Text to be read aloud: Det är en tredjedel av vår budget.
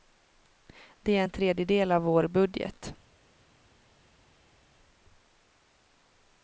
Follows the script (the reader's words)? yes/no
yes